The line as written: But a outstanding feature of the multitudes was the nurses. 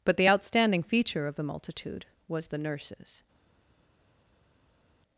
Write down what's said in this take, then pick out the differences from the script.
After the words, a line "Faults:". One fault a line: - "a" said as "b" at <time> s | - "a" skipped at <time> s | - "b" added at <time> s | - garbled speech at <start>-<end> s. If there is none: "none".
But the outstanding feature of the multitude was the nurses.
Faults:
- "a" said as "the" at 0.2 s
- "multitudes" said as "multitude" at 1.4 s